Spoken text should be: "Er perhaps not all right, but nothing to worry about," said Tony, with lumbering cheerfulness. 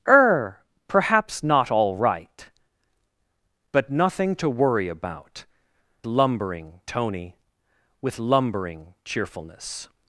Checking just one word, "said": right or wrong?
wrong